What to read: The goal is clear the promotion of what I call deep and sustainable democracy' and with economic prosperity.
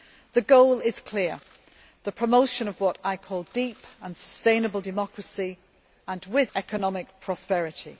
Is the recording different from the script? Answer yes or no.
no